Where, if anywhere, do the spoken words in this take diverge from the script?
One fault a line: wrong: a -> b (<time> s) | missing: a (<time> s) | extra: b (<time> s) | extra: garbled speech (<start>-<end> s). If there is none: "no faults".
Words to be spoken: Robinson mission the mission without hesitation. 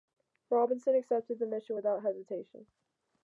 wrong: mission -> accepted (0.9 s)